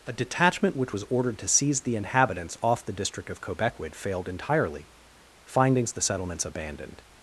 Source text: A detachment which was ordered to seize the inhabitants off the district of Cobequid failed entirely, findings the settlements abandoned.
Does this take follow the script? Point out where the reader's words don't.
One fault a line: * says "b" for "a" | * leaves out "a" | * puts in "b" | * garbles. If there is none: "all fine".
all fine